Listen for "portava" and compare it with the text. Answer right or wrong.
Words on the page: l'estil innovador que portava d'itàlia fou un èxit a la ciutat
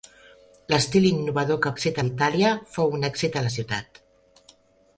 wrong